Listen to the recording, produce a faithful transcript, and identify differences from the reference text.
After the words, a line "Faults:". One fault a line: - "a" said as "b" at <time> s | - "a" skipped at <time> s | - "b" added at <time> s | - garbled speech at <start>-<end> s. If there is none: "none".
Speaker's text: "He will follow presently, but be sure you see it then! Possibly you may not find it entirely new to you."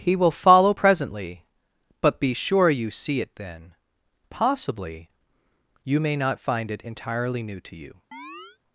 "He will follow presently, but be sure you see it then! Possibly you may not find it entirely new to you."
Faults:
none